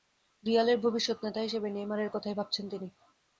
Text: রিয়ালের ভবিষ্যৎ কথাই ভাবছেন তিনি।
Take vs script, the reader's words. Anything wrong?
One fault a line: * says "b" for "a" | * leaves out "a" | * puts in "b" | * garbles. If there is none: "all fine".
* puts in "নেতা হিসেবে নেইমারের"